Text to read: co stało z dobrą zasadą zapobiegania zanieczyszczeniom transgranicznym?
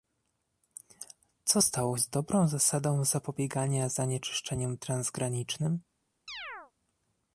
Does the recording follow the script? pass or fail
pass